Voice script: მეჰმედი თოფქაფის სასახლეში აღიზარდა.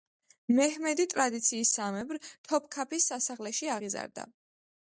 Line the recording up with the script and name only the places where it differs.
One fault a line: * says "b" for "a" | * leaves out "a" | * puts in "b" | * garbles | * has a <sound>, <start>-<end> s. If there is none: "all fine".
* puts in "ტრადიციისამებრ"